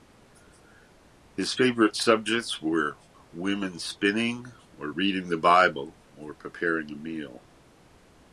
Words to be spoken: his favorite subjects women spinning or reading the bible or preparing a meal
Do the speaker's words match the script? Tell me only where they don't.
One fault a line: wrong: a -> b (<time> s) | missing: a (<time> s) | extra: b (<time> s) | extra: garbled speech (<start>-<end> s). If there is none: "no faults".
extra: were (2.6 s)